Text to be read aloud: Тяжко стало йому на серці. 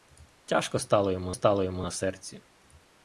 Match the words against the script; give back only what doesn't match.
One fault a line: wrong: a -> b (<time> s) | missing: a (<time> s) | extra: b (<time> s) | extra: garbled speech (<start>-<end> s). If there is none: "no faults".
extra: стало йому (1.3 s)